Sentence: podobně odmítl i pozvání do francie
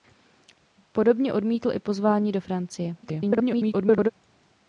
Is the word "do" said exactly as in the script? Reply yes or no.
yes